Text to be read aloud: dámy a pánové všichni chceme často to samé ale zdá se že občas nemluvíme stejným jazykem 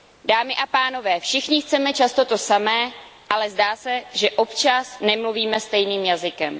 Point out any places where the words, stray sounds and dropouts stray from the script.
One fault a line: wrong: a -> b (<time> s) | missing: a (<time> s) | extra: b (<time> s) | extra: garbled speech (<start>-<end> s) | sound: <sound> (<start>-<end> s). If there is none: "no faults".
no faults